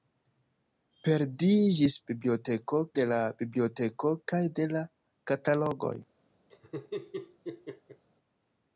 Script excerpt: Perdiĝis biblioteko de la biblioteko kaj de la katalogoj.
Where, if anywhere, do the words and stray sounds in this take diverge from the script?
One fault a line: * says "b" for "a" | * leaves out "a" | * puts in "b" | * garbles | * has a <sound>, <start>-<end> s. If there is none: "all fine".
* has a laugh, 6.5-8.0 s